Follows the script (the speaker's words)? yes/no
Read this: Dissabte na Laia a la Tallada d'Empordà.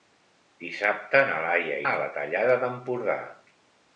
yes